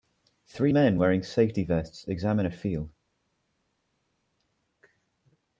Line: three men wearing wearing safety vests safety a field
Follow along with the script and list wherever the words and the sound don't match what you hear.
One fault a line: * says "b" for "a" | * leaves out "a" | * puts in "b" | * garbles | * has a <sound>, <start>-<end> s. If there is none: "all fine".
* leaves out "wearing"
* says "examine" for "safety"